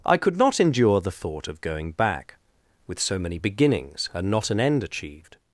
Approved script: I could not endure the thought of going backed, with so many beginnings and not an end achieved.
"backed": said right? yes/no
no